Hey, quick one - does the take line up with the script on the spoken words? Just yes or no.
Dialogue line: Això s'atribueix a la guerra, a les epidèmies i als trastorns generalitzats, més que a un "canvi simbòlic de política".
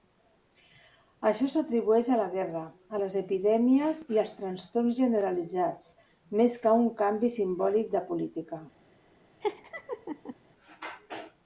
yes